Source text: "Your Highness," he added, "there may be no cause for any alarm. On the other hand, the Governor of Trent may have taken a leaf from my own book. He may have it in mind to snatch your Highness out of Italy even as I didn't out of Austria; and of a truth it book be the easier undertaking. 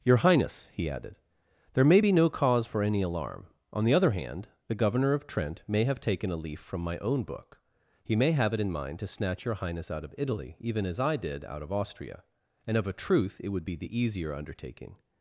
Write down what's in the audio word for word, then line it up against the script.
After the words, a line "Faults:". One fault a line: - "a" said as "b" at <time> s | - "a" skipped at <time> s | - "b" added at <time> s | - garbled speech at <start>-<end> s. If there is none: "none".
"Your Highness," he added, "there may be no cause for any alarm. On the other hand, the Governor of Trent may have taken a leaf from my own book. He may have it in mind to snatch your Highness out of Italy even as I did out of Austria; and of a truth it would be the easier undertaking.
Faults:
- "didn't" said as "did" at 11.2 s
- "book" said as "would" at 13.5 s